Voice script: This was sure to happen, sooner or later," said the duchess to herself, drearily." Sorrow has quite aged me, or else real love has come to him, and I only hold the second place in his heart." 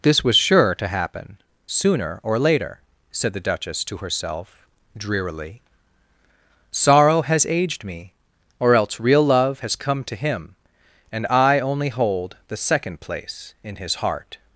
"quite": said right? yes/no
no